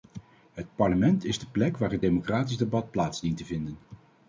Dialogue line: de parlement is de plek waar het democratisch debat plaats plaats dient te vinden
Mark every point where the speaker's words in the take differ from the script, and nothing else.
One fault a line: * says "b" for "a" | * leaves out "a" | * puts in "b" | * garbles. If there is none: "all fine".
* says "het" for "de"
* leaves out "plaats"